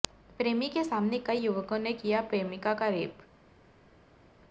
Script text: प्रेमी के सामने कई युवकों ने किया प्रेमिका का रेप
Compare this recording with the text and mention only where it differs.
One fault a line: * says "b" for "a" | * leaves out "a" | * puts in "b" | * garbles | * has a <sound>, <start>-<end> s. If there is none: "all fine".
all fine